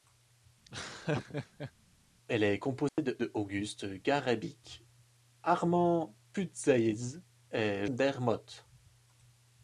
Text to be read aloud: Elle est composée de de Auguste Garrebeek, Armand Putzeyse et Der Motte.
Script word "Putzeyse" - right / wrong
right